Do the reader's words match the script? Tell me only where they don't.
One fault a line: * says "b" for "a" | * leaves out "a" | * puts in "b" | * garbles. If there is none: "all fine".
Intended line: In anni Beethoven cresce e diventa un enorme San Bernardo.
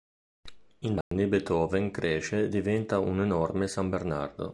all fine